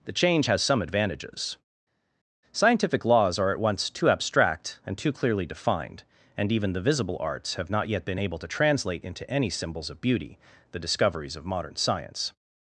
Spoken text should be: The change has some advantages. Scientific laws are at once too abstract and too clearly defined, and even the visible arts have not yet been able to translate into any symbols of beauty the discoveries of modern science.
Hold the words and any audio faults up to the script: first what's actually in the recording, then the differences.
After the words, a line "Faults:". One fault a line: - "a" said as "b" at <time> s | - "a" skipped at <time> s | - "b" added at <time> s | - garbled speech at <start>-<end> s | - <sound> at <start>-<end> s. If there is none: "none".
The change has some advantages. Scientific laws are at once too abstract and too clearly defined, and even the visible arts have not yet been able to translate into any symbols of beauty the discoveries of modern science.
Faults:
none